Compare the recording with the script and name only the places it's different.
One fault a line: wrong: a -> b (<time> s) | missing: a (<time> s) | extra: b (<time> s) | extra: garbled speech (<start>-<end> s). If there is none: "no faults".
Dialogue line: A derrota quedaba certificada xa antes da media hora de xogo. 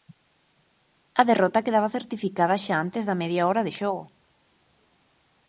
no faults